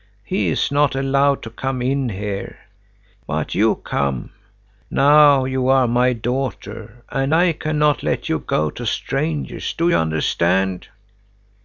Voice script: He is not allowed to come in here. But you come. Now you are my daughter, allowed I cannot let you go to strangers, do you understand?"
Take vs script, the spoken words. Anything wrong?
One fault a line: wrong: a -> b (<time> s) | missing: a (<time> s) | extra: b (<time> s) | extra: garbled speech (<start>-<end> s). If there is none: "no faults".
wrong: allowed -> and (7.1 s)